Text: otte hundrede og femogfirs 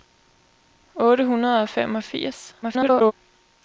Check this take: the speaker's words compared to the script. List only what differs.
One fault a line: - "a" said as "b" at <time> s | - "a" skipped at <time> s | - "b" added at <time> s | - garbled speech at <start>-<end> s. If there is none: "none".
- garbled speech at 2.6-3.1 s